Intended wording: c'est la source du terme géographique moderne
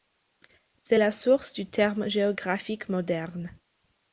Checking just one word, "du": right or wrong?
right